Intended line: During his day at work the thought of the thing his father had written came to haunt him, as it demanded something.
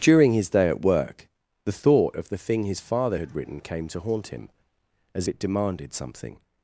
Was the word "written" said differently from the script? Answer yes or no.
no